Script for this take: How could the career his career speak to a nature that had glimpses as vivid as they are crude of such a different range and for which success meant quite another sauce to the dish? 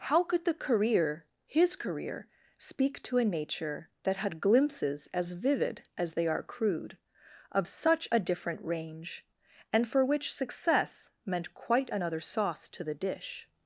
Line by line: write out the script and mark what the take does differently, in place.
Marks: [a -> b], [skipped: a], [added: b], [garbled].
How could the career his career speak to a nature that had glimpses as vivid as they are crude of such a different range and for which success meant quite another sauce to the dish?